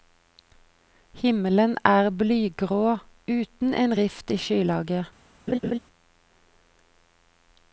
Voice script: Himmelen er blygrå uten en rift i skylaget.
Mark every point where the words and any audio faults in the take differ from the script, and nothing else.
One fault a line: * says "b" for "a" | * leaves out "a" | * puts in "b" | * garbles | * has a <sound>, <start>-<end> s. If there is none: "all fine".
* has a laugh, 5.5-5.8 s